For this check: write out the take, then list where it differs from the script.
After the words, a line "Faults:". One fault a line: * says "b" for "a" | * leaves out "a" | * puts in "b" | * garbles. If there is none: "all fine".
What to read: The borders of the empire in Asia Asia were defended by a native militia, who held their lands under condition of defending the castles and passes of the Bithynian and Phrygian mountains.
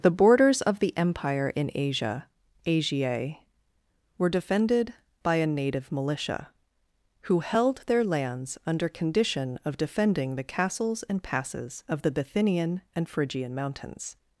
The borders of the empire in Asia Asia were defended by a native militia, who held their lands under condition of defending the castles and passes of the Bithynian and Phrygian mountains.
Faults:
all fine